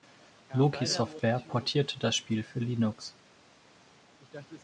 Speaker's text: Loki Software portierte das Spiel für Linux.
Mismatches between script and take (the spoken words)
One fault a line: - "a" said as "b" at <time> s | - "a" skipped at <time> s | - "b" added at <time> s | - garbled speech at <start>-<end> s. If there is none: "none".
none